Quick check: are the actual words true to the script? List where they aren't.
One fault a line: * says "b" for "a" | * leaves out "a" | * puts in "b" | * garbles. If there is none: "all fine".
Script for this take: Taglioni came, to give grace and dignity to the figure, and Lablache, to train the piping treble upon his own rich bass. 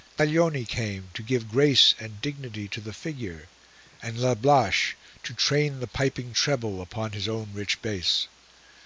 all fine